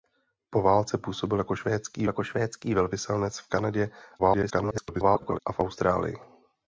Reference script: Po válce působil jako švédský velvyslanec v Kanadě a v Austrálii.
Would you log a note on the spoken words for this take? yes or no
yes